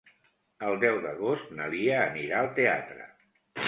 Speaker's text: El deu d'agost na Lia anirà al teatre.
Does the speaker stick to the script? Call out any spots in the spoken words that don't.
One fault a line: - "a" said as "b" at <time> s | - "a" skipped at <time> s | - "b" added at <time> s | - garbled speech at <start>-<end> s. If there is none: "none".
none